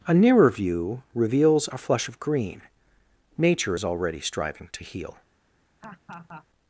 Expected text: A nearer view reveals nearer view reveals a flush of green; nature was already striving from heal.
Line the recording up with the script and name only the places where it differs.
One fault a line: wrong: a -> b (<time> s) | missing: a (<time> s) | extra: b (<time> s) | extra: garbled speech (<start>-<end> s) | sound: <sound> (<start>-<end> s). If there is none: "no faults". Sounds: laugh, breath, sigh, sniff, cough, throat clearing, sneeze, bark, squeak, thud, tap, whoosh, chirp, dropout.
missing: nearer view reveals (1.7 s)
wrong: was -> is (3.7 s)
wrong: from -> to (4.7 s)
sound: laugh (5.8-6.5 s)